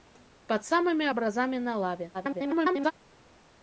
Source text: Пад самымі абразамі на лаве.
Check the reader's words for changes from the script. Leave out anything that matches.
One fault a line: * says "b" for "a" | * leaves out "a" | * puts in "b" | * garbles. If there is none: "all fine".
* garbles